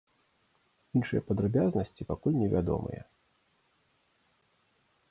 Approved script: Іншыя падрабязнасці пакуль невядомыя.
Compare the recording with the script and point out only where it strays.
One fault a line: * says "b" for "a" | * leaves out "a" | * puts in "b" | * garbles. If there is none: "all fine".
all fine